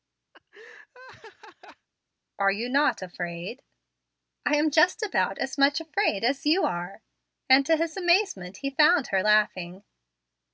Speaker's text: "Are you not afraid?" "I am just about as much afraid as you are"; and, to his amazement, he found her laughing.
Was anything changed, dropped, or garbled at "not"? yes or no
no